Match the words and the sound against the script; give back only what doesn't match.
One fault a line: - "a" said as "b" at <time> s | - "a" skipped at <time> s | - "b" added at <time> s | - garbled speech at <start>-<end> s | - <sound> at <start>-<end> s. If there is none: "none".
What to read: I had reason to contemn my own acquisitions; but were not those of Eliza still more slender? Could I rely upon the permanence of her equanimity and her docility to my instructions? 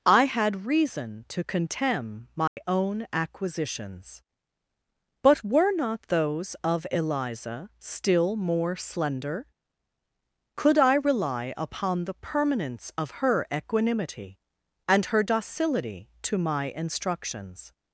- dropout at 2.5-2.6 s